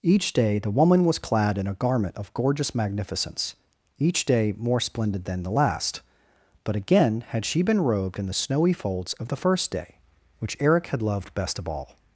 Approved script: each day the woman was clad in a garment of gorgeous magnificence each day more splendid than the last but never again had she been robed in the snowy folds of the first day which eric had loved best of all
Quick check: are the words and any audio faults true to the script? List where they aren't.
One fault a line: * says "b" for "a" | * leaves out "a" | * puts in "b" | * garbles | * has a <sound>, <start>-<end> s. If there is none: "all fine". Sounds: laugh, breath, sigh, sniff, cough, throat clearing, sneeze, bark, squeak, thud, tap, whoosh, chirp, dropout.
* leaves out "never"